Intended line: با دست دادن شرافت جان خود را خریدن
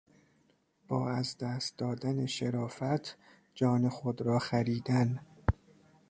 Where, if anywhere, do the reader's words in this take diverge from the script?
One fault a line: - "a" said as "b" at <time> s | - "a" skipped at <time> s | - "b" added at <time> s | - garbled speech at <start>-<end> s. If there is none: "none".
- "از" added at 1.1 s